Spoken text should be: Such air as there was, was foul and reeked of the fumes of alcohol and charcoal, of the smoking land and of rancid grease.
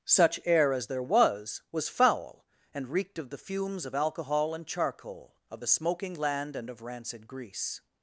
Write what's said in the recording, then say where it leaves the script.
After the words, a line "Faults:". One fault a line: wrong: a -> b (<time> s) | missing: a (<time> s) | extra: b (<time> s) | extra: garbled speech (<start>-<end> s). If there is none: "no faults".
Such air as there was, was foul and reeked of the fumes of alcohol and charcoal, of the smoking land and of rancid grease.
Faults:
no faults